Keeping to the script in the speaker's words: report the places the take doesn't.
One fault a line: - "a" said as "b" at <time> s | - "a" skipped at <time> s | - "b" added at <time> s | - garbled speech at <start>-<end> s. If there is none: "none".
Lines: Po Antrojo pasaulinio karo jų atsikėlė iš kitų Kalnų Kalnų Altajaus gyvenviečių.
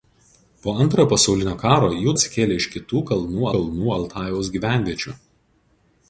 none